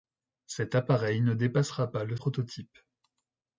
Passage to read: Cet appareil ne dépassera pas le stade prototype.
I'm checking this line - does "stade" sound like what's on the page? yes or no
no